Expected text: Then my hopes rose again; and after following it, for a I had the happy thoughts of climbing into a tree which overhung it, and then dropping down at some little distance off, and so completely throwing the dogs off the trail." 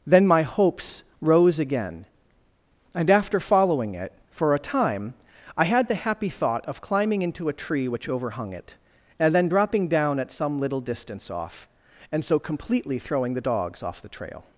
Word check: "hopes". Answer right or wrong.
right